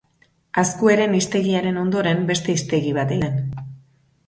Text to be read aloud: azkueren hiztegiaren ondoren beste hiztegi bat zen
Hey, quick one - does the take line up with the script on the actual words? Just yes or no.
yes